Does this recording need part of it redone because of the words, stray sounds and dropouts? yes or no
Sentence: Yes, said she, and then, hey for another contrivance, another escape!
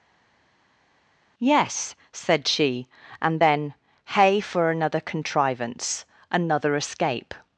no